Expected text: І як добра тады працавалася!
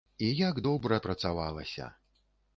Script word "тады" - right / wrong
wrong